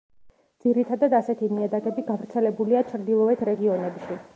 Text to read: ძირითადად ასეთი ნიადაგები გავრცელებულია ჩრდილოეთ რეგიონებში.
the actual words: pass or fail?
pass